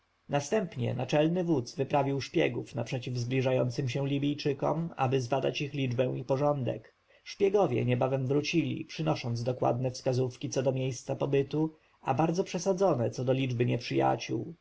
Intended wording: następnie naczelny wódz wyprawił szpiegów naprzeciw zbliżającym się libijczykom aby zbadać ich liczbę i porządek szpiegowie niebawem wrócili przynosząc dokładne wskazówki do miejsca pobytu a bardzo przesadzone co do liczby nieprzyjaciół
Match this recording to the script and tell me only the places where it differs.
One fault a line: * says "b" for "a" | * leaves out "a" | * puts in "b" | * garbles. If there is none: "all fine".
* puts in "co"